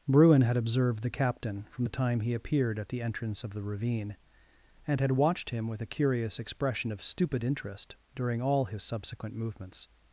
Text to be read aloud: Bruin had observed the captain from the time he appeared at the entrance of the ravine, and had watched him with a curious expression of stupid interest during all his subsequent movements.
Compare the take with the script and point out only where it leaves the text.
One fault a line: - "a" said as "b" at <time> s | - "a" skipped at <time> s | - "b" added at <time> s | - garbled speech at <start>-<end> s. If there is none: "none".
none